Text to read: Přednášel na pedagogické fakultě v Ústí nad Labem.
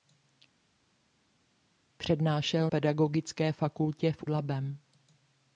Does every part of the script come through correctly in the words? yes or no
no